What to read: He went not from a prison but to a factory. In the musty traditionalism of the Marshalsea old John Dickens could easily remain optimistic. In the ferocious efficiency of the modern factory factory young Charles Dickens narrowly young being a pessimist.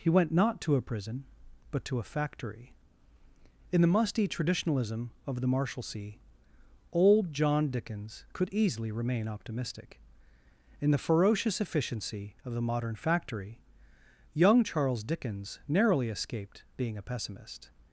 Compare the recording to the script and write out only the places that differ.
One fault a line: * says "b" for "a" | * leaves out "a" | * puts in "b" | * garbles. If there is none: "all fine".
* says "to" for "from"
* leaves out "factory"
* says "escaped" for "young"